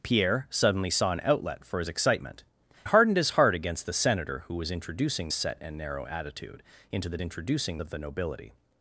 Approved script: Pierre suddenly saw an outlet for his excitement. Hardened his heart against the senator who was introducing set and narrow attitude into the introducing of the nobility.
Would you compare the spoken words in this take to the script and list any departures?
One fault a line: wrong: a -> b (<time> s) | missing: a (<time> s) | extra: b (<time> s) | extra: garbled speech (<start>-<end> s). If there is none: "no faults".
no faults